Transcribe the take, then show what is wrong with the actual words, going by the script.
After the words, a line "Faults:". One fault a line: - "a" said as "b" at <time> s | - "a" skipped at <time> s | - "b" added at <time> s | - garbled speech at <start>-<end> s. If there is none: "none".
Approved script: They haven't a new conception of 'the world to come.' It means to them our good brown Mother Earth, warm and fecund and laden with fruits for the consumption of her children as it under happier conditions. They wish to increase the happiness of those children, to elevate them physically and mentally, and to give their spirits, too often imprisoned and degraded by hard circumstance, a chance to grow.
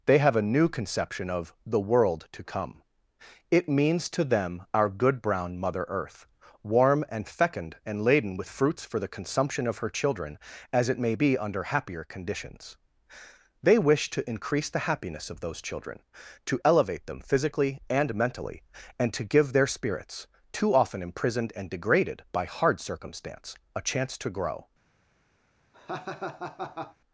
They have a new conception of 'the world to come.' It means to them our good brown Mother Earth, warm and fecund and laden with fruits for the consumption of her children as it may be under happier conditions. They wish to increase the happiness of those children, to elevate them physically and mentally, and to give their spirits, too often imprisoned and degraded by hard circumstance, a chance to grow.
Faults:
- "haven't" said as "have" at 0.2 s
- "may be" added at 11.0 s